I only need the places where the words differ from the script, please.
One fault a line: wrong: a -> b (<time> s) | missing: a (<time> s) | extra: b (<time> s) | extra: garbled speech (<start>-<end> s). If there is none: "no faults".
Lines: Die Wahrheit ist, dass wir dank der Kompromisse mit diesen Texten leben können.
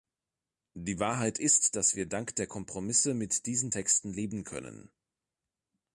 no faults